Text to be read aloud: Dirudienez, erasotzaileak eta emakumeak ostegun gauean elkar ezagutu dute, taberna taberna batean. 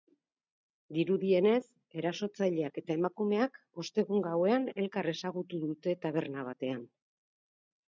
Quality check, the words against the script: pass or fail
fail